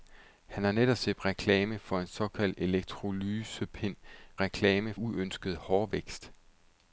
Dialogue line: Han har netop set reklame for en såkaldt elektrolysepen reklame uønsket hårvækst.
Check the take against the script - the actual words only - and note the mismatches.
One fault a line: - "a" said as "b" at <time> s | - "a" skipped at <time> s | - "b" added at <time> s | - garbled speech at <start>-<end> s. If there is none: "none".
none